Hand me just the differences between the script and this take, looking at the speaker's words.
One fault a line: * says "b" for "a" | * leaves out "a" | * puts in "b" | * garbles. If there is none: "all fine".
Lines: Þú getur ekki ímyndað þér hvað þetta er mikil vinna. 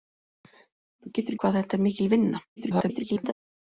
* leaves out "ekki ímyndað þér"
* garbles